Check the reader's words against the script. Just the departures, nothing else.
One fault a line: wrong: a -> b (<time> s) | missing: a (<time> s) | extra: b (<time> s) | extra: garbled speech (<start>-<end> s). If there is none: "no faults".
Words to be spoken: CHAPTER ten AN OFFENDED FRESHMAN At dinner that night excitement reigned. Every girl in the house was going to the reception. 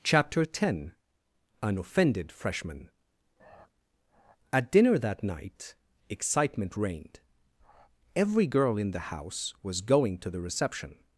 no faults